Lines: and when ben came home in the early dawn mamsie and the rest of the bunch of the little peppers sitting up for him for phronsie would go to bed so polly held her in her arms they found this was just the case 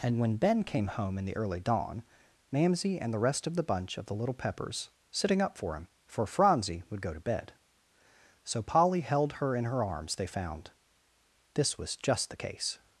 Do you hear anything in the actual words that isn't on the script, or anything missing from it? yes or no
no